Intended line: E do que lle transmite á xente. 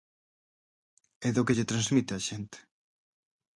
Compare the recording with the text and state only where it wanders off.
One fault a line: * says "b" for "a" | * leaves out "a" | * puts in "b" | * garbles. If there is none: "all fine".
all fine